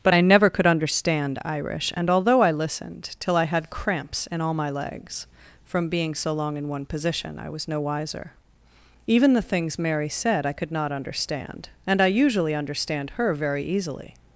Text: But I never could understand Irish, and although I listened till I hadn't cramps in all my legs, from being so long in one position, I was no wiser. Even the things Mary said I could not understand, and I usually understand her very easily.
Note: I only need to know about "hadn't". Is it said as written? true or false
false